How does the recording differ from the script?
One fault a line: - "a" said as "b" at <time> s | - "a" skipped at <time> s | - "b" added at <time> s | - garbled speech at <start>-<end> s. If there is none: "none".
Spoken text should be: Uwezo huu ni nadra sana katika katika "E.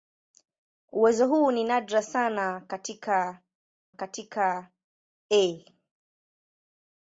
none